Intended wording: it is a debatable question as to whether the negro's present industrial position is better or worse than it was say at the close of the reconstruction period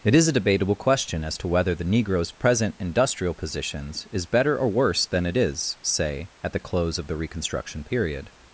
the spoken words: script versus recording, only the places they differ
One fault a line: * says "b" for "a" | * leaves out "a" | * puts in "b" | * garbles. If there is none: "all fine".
* says "positions" for "position"
* says "is" for "was"